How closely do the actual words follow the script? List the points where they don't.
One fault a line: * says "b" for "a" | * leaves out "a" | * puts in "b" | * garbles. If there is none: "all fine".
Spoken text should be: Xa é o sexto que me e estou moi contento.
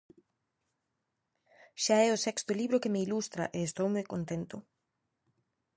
* puts in "libro"
* puts in "ilustra"